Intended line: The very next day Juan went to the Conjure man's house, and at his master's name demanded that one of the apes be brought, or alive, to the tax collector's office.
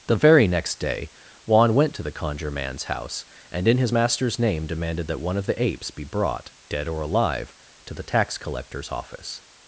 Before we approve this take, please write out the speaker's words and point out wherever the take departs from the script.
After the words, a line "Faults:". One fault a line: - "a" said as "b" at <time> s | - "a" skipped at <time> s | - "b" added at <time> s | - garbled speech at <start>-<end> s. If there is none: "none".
The very next day Juan went to the Conjure man's house, and in his master's name demanded that one of the apes be brought, dead or alive, to the tax collector's office.
Faults:
- "at" said as "in" at 3.7 s
- "dead" added at 6.7 s